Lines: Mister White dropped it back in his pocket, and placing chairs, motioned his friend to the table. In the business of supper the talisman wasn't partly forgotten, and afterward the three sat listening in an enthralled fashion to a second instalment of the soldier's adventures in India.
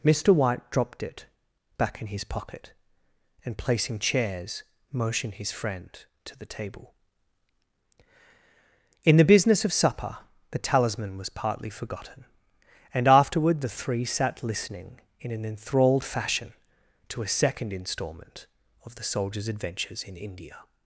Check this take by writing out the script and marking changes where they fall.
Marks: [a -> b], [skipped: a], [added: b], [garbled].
Mister White dropped it back in his pocket, and placing chairs, motioned his friend to the table. In the business of supper the talisman [wasn't -> was] partly forgotten, and afterward the three sat listening in an enthralled fashion to a second instalment of the soldier's adventures in India.